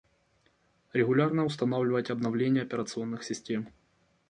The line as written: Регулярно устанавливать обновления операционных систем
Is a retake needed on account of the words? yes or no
no